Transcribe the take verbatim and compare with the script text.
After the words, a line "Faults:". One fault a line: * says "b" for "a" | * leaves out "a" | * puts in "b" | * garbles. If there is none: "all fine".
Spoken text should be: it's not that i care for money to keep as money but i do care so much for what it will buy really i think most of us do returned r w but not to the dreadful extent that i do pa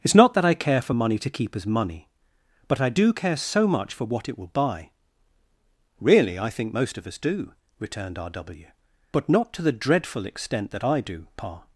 it's not that i care for money to keep as money but i do care so much for what it will buy really i think most of us do returned r w but not to the dreadful extent that i do pa
Faults:
all fine